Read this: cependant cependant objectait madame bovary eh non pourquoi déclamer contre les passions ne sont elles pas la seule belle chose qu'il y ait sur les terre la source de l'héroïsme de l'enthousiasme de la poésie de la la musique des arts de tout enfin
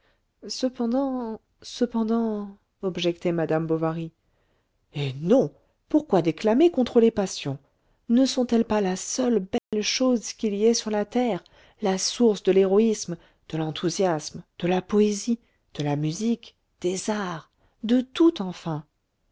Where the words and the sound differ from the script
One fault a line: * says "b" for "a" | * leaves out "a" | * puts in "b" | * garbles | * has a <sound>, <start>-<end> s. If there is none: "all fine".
* has a dropout, 9.6-9.7 s
* says "la" for "les"
* leaves out "la"